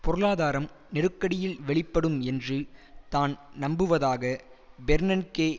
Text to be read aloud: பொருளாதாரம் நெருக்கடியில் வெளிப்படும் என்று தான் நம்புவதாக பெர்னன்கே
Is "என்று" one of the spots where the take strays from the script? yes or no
no